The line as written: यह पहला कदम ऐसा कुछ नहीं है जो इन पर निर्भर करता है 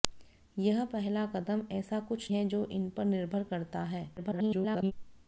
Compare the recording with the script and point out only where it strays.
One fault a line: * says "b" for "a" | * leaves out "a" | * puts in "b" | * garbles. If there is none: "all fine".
* leaves out "नहीं"
* garbles